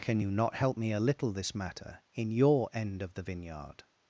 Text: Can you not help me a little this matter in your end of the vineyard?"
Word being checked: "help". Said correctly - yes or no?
yes